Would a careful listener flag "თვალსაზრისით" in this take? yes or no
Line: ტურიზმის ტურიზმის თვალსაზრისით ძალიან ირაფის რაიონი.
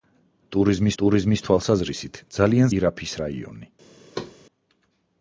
no